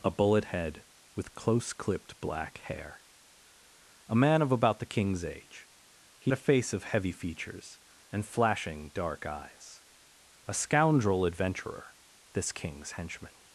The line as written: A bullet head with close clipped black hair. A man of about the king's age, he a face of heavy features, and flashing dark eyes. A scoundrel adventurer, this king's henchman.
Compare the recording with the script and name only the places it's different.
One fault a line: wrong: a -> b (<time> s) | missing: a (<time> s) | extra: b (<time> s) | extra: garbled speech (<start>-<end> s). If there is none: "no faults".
no faults